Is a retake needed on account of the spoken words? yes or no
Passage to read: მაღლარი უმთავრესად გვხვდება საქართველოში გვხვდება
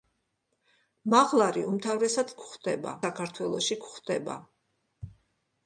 no